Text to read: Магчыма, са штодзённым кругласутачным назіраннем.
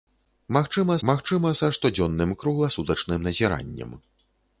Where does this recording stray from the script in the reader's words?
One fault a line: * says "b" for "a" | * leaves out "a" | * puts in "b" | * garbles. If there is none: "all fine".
* puts in "магчыма"